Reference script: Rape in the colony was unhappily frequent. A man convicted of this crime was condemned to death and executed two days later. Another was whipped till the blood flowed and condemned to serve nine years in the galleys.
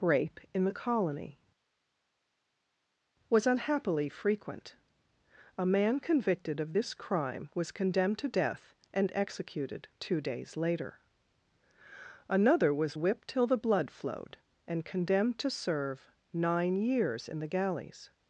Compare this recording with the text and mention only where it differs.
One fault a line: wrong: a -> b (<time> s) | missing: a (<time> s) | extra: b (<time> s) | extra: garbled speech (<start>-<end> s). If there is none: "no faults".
no faults